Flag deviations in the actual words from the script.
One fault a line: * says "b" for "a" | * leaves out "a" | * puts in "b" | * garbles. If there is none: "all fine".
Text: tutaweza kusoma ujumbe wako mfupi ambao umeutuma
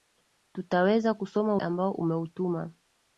* leaves out "ujumbe wako mfupi"